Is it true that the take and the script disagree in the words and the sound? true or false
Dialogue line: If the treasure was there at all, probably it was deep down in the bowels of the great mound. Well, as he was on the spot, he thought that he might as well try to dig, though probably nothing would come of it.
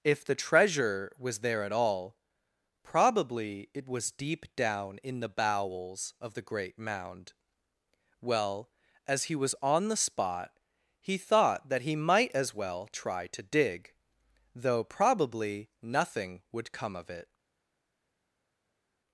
false